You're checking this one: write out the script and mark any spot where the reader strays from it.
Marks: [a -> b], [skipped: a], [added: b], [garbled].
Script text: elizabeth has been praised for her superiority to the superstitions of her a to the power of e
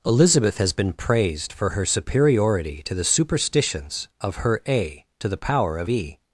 elizabeth has been praised for her superiority to the superstitions of her a to the power of e